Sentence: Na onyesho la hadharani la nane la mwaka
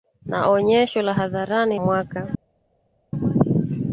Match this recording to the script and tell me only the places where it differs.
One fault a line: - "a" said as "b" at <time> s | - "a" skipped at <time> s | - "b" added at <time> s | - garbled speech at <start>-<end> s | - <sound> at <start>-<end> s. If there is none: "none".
- "la nane la" skipped at 1.8 s